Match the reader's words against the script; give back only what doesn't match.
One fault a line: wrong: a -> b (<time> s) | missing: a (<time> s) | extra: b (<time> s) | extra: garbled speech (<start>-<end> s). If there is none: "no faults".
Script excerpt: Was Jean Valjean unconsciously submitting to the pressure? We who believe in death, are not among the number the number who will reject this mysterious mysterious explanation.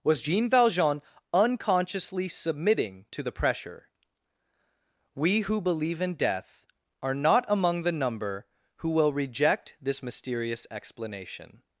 missing: the number (8.4 s)
missing: mysterious (10.7 s)